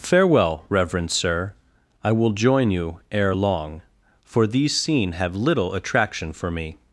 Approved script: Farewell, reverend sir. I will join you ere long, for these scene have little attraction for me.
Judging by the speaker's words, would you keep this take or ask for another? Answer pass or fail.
pass